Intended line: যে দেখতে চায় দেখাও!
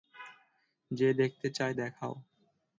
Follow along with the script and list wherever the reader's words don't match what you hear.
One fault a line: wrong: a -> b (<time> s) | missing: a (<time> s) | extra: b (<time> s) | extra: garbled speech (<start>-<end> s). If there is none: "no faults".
no faults